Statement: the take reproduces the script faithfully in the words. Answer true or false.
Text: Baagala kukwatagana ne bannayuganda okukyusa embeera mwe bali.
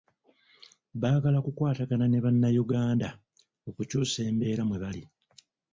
true